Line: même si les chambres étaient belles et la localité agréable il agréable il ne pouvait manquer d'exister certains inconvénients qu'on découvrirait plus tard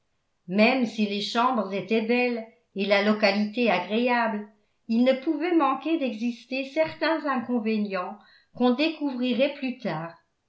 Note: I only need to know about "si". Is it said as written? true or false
true